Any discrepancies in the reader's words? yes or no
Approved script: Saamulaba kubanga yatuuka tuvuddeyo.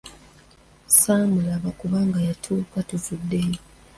no